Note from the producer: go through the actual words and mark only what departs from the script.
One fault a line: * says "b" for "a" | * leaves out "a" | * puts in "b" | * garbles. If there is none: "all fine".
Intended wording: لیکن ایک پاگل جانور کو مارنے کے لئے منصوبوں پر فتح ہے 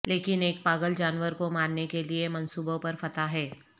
all fine